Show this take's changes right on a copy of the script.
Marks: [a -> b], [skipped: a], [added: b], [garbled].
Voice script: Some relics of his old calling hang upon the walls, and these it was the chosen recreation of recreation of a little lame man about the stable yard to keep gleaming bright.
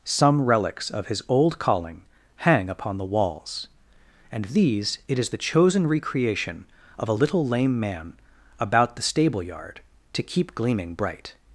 Some relics of his old calling hang upon the walls, and these it [was -> is] the chosen recreation of [skipped: recreation of] a little lame man about the stable yard to keep gleaming bright.